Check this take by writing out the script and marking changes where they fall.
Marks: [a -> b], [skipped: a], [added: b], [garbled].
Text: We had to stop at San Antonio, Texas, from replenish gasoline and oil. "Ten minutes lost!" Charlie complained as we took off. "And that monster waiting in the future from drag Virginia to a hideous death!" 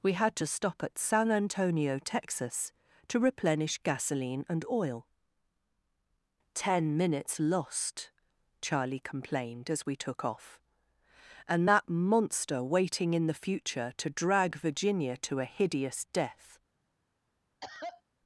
We had to stop at San Antonio, Texas, [from -> to] replenish gasoline and oil. "Ten minutes lost!" Charlie complained as we took off. "And that monster waiting in the future [from -> to] drag Virginia to a hideous death!"